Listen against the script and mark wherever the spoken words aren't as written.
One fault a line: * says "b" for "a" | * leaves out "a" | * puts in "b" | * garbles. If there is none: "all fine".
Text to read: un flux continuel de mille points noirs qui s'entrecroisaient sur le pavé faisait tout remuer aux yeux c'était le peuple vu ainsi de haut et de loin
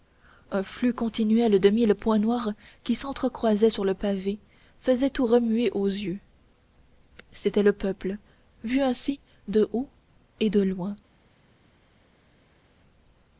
all fine